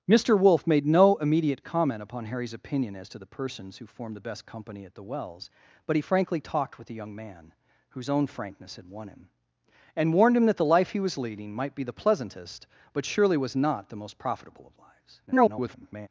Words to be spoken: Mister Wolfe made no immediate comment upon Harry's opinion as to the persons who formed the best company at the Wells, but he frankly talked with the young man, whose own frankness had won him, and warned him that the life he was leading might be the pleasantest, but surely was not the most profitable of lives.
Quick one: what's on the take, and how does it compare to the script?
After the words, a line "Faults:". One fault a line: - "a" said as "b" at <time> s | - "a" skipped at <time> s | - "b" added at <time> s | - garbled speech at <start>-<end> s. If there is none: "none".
Mister Wolfe made no immediate comment upon Harry's opinion as to the persons who formed the best company at the Wells, but he frankly talked with the young man, whose own frankness had won him, and warned him that the life he was leading might be the pleasantest, but surely was not the most profitable of lives. [garbled]
Faults:
- garbled speech at 15.3-16.1 s